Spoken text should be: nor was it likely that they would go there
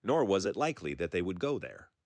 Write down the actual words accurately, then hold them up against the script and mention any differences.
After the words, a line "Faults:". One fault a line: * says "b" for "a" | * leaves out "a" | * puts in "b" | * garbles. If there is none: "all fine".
nor was it likely that they would go there
Faults:
all fine